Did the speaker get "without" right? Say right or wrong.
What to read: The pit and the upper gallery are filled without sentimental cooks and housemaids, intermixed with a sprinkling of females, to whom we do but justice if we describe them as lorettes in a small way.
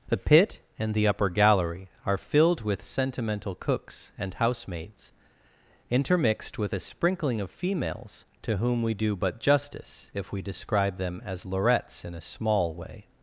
wrong